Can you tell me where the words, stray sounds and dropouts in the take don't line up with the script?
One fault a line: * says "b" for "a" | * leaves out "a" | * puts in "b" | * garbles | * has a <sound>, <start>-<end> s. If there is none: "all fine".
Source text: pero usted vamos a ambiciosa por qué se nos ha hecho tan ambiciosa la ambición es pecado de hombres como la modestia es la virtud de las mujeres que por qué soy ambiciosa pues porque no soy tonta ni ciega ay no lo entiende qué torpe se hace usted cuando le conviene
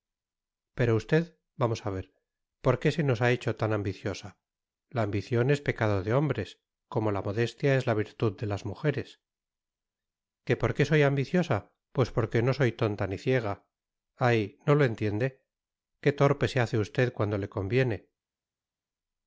* says "ver" for "ambiciosa"